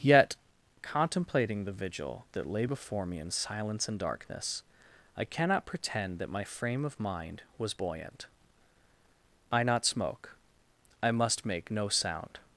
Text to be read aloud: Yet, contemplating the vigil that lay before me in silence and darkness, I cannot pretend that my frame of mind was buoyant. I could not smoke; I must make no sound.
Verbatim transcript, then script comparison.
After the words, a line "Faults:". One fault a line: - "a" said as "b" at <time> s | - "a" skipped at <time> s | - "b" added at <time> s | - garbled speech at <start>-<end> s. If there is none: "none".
Yet, contemplating the vigil that lay before me in silence and darkness, I cannot pretend that my frame of mind was buoyant. I not smoke; I must make no sound.
Faults:
- "could" skipped at 9.6 s